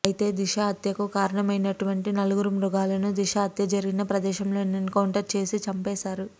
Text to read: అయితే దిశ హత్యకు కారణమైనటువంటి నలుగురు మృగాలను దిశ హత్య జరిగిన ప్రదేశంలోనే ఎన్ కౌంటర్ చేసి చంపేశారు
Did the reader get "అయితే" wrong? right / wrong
right